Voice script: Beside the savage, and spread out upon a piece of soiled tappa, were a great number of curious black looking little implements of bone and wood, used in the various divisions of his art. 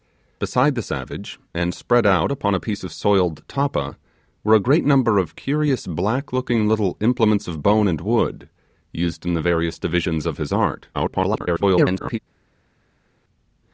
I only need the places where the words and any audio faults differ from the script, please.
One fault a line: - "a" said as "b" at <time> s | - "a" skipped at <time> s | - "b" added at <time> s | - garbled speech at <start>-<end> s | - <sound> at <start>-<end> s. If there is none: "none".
- garbled speech at 10.9-12.2 s